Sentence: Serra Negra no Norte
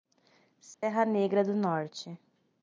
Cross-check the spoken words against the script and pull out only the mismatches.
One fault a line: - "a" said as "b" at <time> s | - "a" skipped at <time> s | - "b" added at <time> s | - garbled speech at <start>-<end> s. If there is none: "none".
- "no" said as "do" at 1.4 s